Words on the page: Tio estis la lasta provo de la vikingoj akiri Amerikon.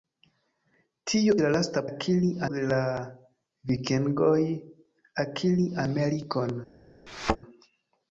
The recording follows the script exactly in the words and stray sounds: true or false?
false